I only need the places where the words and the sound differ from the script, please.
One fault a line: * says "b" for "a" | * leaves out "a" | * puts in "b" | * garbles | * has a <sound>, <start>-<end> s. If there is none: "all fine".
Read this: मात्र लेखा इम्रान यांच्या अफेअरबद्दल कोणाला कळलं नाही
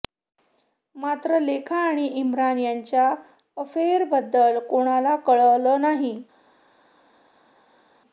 * puts in "आणि"